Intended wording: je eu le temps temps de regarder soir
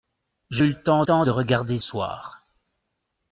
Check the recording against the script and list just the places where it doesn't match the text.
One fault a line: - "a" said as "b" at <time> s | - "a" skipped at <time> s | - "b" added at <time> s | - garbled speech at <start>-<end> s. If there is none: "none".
none